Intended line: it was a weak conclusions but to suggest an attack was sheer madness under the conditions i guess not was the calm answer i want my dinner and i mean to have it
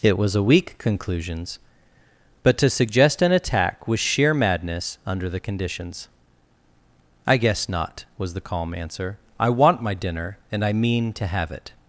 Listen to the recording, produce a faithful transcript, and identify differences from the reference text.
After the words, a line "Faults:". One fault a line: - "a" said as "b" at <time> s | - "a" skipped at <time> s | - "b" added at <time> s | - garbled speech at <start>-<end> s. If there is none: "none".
it was a weak conclusions but to suggest an attack was sheer madness under the conditions i guess not was the calm answer i want my dinner and i mean to have it
Faults:
none